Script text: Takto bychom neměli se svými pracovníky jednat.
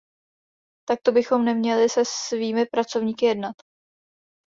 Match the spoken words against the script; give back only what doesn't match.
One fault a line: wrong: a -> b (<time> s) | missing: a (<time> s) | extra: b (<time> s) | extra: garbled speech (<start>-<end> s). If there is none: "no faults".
no faults